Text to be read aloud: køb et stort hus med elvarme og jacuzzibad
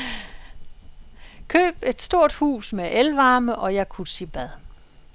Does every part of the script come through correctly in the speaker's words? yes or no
yes